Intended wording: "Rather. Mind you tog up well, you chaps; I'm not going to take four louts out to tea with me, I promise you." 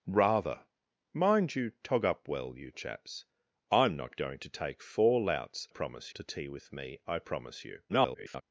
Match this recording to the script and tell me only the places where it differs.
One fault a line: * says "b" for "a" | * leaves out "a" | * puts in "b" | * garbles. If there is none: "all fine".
* says "promise" for "out"
* garbles